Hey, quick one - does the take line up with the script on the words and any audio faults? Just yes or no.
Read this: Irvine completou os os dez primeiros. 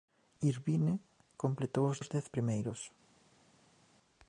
yes